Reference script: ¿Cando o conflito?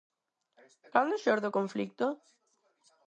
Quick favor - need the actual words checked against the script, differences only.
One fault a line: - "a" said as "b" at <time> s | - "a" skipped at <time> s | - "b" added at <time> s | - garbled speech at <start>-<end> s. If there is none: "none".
- "xorde" added at 1.2 s